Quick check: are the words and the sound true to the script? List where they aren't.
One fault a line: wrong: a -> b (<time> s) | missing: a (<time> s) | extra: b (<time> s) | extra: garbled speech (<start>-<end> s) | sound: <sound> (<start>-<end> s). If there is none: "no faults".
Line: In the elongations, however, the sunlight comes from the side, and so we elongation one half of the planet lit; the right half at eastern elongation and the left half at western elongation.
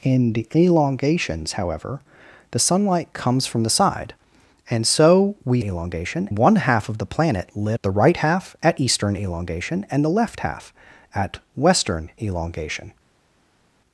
no faults